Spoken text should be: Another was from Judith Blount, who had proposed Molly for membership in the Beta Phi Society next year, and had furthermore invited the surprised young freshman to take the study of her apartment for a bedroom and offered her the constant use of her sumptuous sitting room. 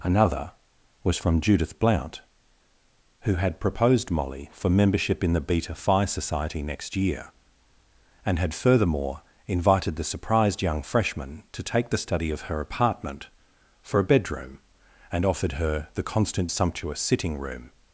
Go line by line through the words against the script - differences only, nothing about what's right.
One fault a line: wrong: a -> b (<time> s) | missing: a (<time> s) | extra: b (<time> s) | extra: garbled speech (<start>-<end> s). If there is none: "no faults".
missing: use of her (16.5 s)